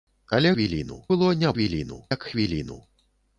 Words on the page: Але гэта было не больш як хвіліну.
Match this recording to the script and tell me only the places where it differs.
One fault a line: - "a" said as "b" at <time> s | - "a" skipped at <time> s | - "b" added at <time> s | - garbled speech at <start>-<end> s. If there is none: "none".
- "гэта" said as "хвіліну" at 0.5 s
- "больш" said as "хвіліну" at 1.5 s